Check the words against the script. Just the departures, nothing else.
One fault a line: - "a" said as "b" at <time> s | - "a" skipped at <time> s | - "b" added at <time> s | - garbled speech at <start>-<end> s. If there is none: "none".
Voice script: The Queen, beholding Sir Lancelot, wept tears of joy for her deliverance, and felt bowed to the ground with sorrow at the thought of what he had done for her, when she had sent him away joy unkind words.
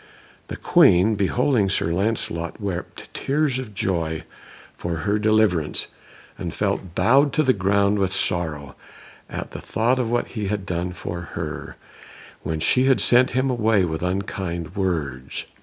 - "joy" said as "with" at 13.8 s